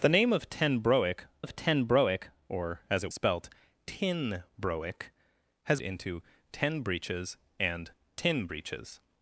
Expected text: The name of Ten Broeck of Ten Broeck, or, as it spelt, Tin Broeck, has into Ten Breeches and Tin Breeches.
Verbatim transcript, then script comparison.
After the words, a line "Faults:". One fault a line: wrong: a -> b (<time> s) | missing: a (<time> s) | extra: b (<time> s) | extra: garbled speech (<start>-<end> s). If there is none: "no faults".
The name of Ten Broeck of Ten Broeck, or, as it spelt, Tin Broeck, has into Ten Breeches and Tin Breeches.
Faults:
no faults